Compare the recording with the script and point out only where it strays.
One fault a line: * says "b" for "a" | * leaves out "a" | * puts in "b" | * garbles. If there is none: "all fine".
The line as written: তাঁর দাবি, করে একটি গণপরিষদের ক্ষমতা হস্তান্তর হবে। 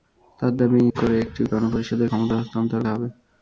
all fine